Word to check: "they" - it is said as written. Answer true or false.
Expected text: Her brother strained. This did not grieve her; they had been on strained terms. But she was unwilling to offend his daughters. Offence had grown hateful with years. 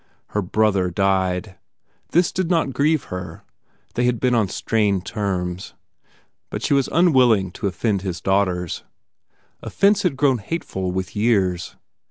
true